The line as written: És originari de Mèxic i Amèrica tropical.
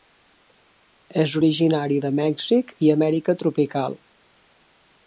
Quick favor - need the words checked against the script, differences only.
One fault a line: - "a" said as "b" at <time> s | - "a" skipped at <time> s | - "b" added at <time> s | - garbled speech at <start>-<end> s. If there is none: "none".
none